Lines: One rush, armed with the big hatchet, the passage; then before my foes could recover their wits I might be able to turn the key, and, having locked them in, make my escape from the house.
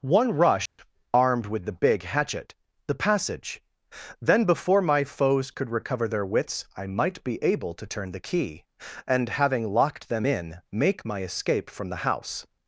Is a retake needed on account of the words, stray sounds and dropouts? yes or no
yes